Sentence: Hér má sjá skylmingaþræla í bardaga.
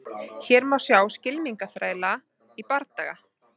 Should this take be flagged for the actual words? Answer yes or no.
no